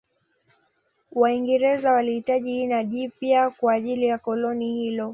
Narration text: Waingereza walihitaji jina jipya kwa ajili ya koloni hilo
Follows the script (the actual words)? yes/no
yes